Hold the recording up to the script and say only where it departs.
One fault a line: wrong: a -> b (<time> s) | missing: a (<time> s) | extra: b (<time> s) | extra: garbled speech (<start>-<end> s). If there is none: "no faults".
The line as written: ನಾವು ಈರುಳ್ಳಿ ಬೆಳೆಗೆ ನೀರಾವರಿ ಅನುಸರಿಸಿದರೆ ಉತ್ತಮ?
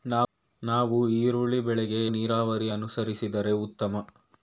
no faults